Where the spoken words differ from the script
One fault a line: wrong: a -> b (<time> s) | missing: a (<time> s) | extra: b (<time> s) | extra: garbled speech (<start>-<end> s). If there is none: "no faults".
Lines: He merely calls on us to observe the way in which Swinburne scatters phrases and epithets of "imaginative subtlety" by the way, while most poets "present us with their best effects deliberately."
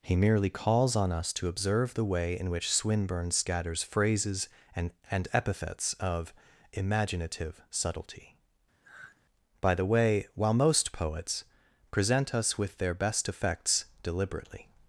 extra: and (5.1 s)